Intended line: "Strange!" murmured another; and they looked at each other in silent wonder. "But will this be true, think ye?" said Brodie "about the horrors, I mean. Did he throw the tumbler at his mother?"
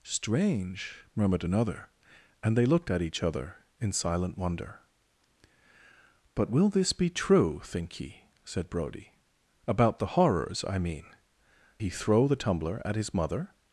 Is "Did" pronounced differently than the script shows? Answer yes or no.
yes